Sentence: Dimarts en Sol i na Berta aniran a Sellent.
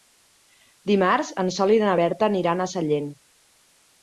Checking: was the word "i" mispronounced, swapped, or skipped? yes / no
no